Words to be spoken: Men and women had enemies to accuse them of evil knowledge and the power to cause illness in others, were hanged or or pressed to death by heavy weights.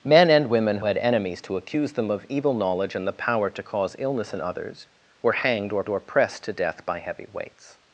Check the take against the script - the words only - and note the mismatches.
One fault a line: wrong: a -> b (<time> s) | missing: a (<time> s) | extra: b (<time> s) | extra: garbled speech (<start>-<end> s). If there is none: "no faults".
no faults